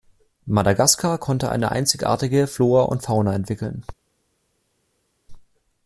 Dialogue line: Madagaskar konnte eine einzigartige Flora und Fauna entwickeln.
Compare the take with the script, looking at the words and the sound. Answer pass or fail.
pass